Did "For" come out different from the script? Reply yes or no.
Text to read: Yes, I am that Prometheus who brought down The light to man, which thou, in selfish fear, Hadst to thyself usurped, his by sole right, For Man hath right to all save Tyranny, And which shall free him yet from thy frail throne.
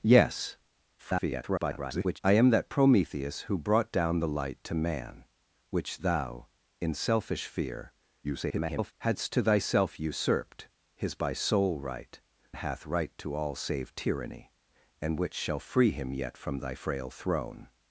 yes